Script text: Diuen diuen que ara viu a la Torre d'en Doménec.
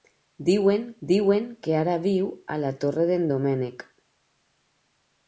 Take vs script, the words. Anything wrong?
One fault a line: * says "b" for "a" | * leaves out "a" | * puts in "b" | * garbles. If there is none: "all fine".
all fine